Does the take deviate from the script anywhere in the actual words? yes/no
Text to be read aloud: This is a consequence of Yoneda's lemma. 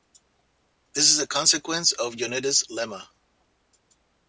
no